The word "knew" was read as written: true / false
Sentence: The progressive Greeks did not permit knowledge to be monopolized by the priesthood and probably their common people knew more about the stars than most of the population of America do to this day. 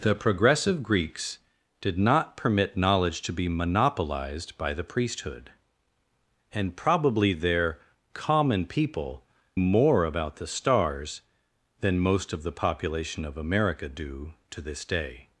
false